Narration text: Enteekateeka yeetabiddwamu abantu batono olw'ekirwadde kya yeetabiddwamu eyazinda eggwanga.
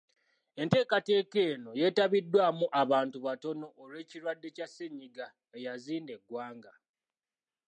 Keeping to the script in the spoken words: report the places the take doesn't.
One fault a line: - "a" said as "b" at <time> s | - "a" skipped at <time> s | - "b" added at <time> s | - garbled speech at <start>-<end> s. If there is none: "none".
- "eno" added at 1.5 s
- "yeetabiddwamu" said as "ssennyiga" at 4.7 s